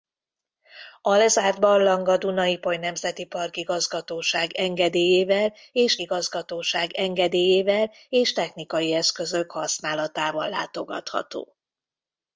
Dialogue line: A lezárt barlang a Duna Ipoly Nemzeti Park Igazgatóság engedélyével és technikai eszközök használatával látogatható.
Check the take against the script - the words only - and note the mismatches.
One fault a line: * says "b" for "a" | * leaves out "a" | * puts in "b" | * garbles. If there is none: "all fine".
* puts in "Igazgatóság engedélyével és"